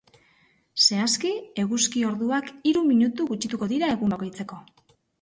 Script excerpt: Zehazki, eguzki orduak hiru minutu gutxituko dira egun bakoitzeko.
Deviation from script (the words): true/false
false